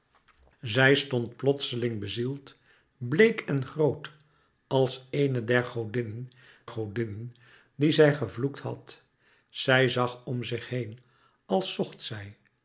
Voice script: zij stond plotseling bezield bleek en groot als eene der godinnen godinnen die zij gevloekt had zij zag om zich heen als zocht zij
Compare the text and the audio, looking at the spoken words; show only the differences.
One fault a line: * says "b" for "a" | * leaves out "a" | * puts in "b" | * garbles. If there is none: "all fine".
all fine